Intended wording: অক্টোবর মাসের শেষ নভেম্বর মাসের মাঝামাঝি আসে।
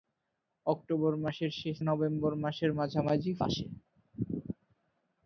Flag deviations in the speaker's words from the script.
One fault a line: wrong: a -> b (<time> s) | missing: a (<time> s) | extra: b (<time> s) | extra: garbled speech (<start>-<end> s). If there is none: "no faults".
no faults